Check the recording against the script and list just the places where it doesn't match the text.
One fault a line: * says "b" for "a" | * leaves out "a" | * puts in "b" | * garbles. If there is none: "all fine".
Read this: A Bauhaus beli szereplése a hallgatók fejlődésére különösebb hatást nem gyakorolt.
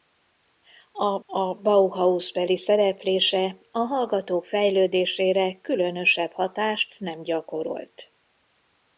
* puts in "a"